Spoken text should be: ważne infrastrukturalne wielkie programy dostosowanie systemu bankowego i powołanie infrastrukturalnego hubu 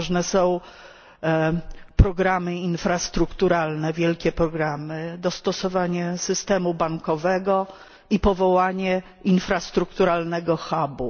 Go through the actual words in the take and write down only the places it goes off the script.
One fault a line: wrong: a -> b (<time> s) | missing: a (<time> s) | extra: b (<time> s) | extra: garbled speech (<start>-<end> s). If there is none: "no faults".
extra: są programy (0.2 s)